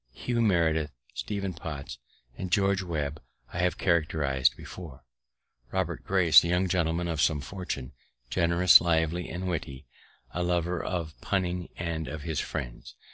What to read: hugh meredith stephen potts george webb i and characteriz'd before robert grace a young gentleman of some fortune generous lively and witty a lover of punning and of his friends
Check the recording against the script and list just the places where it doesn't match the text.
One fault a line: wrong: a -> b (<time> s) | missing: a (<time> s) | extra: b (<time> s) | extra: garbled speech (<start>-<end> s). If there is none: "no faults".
extra: and (2.4 s)
wrong: and -> have (3.6 s)